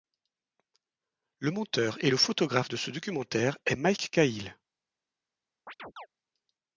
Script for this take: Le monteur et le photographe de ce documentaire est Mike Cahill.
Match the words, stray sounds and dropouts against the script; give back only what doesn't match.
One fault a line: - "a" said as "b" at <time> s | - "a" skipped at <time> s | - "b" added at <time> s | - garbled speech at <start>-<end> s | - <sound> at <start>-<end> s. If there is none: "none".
- chirp at 5.7-6.1 s